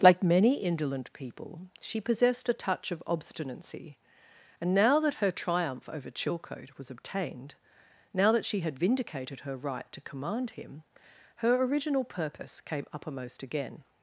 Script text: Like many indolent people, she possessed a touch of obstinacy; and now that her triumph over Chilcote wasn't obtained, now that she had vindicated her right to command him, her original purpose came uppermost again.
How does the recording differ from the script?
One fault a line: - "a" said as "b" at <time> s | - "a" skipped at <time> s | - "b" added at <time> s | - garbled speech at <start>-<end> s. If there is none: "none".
- "wasn't" said as "was" at 6.8 s